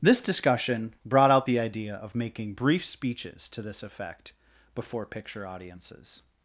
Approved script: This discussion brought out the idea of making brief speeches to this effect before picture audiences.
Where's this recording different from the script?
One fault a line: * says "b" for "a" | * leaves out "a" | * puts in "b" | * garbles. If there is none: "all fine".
all fine